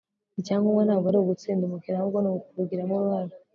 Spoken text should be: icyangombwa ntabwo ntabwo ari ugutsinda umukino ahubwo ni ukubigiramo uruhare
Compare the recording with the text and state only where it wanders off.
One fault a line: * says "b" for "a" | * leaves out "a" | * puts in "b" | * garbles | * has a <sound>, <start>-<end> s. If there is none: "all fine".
* leaves out "ntabwo"